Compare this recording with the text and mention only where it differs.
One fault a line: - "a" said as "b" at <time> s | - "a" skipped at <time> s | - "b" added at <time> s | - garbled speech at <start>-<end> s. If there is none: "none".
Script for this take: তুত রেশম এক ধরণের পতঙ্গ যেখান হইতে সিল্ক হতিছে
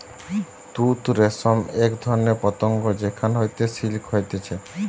none